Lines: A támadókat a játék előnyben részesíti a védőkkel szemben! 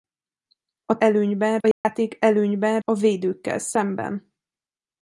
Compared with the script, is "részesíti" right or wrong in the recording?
wrong